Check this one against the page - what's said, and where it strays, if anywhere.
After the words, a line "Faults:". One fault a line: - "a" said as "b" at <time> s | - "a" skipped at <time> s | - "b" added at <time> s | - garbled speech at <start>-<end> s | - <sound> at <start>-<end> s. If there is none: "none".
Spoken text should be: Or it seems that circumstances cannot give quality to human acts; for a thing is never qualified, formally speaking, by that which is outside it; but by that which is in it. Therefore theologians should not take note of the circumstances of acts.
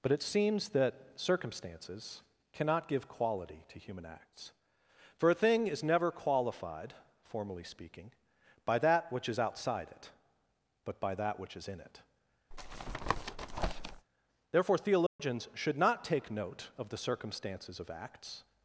But it seems that circumstances cannot give quality to human acts; for a thing is never qualified, formally speaking, by that which is outside it; but by that which is in it. Therefore theologians should not take note of the circumstances of acts.
Faults:
- "Or" said as "But" at 0.0 s
- tap at 12.5-14.1 s
- dropout at 15.1-15.2 s